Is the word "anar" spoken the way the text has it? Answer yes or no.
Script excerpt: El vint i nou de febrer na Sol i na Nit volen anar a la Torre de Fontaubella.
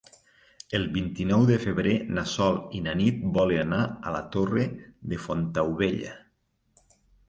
yes